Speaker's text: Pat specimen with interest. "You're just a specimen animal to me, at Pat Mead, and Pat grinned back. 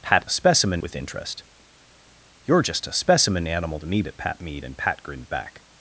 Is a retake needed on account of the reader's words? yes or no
no